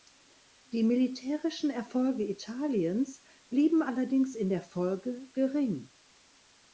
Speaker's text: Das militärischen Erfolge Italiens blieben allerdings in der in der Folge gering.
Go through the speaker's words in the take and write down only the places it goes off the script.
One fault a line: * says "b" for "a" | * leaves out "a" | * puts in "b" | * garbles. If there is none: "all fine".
* says "Die" for "Das"
* leaves out "in der"